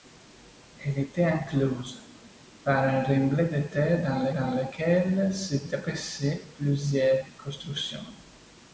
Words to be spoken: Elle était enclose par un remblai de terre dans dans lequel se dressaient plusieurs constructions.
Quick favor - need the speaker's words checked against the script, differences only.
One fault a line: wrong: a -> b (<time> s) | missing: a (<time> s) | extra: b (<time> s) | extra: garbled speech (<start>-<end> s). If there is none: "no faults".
no faults